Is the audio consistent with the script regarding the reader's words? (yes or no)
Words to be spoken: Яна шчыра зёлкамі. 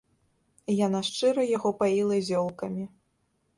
no